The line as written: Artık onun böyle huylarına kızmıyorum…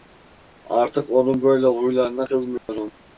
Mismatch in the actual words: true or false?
false